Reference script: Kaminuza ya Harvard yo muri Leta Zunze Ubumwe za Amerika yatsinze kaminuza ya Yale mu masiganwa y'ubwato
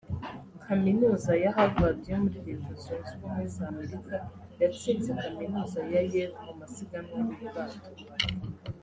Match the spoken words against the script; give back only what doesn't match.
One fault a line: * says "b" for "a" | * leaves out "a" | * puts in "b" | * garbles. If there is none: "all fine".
all fine